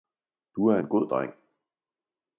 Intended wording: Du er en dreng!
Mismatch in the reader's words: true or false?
true